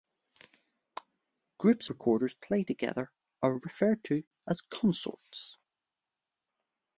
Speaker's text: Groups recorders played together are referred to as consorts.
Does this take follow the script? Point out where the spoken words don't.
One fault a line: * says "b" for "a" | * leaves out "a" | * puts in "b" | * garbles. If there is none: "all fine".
all fine